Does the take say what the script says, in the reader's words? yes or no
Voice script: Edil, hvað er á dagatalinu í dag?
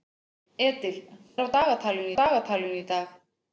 no